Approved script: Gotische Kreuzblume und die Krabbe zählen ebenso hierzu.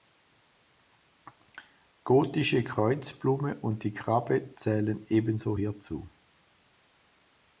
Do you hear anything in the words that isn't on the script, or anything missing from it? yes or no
no